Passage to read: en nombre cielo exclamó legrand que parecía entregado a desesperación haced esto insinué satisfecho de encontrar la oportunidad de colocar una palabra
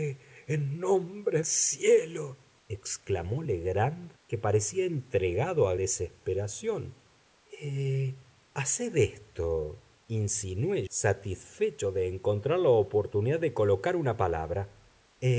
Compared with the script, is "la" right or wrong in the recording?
right